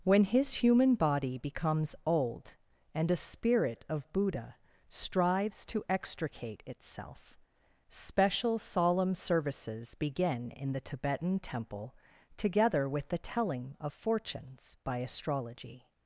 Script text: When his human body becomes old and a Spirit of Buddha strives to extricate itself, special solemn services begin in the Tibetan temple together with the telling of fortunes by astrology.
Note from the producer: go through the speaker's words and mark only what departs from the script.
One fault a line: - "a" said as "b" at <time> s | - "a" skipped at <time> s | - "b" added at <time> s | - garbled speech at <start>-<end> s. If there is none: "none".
none